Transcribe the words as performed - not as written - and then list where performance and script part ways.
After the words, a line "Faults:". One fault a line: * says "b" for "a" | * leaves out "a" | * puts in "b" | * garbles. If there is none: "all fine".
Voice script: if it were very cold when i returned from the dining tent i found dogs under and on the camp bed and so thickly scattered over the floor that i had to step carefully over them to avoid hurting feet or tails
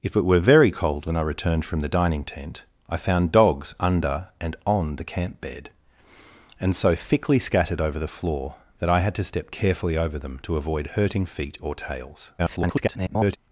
if it were very cold when i returned from the dining tent i found dogs under and on the camp bed and so thickly scattered over the floor that i had to step carefully over them to avoid hurting feet or tails [garbled]
Faults:
* garbles